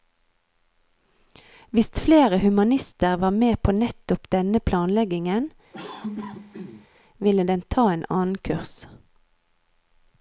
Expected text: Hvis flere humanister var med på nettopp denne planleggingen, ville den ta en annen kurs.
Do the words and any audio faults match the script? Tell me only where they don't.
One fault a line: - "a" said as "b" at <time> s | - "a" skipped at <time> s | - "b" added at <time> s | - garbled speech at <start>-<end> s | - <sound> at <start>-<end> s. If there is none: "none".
- cough at 5.7-6.9 s